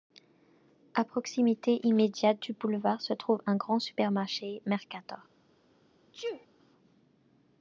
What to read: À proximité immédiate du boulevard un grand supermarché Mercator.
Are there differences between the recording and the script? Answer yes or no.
yes